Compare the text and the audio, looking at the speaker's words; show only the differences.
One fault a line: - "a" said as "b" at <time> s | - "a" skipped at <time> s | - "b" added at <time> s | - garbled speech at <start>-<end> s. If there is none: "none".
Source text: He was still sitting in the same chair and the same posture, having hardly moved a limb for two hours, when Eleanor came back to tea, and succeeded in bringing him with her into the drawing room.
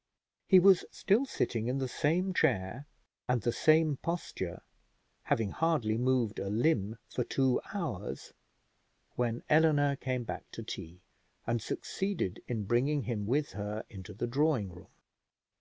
none